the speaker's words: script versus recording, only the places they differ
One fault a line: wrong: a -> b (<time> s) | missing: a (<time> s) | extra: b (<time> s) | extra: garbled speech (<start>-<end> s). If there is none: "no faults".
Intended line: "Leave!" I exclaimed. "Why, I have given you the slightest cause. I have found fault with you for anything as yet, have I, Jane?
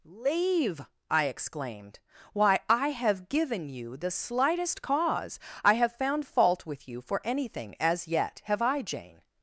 no faults